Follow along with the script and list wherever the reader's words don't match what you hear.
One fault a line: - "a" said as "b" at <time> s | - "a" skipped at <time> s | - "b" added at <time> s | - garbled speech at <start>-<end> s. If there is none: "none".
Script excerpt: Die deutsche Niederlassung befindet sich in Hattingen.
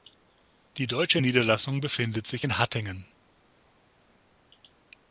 none